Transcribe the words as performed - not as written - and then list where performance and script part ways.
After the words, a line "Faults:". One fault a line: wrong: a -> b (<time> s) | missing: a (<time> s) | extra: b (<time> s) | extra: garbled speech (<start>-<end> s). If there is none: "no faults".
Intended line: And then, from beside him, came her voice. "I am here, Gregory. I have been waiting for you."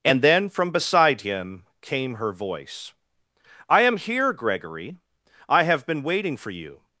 And then, from beside him, came her voice. "I am here, Gregory. I have been waiting for you."
Faults:
no faults